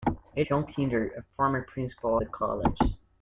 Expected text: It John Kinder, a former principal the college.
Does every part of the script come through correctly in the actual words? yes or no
yes